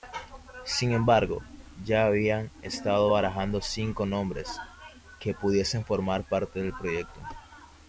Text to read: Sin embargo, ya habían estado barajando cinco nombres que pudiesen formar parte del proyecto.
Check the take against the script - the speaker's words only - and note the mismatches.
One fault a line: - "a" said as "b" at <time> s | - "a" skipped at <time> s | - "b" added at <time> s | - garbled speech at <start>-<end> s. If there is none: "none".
none